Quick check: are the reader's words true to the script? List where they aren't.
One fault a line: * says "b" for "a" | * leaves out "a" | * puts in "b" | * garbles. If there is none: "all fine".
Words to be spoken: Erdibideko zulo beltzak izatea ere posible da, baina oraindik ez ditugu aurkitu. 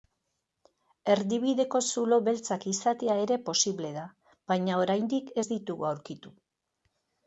all fine